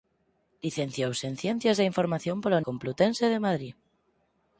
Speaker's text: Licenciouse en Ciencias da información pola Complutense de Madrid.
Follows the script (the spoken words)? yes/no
yes